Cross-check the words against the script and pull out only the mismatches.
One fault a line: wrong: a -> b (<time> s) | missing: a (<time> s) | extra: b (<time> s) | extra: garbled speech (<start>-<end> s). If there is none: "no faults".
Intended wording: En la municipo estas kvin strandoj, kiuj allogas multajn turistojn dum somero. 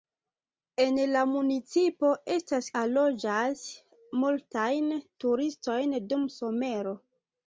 missing: kvin strandoj kiuj (2.7 s)